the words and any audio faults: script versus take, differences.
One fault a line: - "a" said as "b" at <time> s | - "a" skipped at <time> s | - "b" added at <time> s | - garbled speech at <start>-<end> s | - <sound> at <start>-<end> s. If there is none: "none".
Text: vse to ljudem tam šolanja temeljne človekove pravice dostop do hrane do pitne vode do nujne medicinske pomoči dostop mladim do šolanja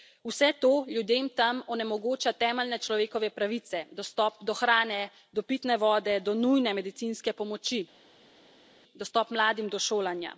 - "šolanja" said as "onemogoča" at 1.8 s